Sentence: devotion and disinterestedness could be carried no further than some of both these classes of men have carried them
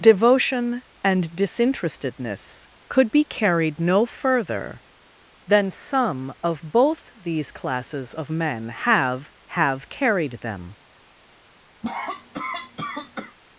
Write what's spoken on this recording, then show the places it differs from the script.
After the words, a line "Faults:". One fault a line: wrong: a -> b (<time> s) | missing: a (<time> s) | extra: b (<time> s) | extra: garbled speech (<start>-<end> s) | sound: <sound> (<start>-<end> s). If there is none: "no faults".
devotion and disinterestedness could be carried no further than some of both these classes of men have have carried them
Faults:
extra: have (9.5 s)
sound: cough (11.8-13.4 s)